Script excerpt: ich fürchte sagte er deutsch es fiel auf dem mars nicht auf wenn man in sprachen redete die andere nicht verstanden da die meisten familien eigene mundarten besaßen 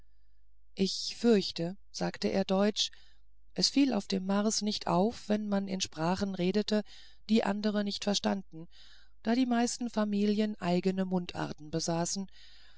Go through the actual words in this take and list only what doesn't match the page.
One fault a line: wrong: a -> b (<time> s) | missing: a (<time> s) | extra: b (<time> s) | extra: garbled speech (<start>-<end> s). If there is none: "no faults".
no faults